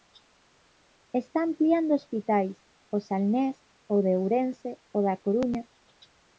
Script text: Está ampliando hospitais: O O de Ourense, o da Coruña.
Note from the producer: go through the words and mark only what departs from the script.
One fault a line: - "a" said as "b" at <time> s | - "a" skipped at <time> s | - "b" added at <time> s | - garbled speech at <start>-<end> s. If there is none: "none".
- "Salnés" added at 3.1 s